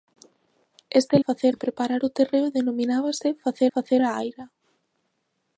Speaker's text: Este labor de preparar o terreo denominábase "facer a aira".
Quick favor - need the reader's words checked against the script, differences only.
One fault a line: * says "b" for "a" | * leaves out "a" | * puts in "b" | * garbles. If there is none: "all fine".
* says "facer" for "labor"
* puts in "facer"